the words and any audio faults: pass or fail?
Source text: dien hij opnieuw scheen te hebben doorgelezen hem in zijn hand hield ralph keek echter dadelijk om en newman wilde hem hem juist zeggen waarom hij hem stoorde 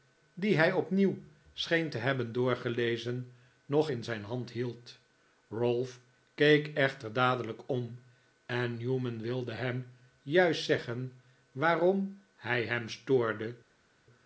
fail